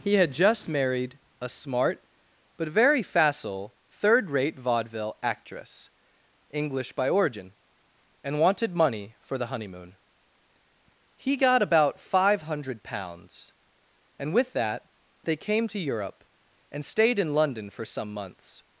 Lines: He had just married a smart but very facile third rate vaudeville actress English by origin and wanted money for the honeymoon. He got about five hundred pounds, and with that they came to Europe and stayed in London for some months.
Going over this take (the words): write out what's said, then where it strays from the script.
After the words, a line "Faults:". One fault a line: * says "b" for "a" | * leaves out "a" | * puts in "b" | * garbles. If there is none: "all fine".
He had just married a smart but very facile third rate vaudeville actress English by origin and wanted money for the honeymoon. He got about five hundred pounds, and with that they came to Europe and stayed in London for some months.
Faults:
all fine